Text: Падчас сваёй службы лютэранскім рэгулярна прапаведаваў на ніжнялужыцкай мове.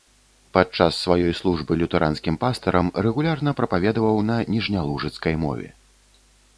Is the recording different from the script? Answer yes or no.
yes